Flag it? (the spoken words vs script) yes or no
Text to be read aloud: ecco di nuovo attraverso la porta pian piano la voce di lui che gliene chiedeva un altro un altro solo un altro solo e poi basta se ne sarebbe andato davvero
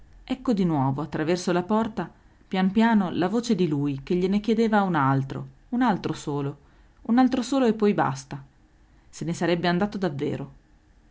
no